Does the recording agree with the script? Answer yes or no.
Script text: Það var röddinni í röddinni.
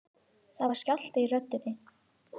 no